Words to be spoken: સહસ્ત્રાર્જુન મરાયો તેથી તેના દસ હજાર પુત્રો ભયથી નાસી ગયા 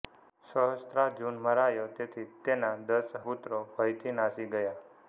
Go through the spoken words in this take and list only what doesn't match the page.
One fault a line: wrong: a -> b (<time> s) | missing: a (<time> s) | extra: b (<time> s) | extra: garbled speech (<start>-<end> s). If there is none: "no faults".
missing: હજાર (3.1 s)